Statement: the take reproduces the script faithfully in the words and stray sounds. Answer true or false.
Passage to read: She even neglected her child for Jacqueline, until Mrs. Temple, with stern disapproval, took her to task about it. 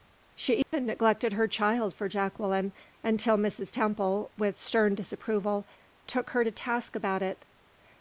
false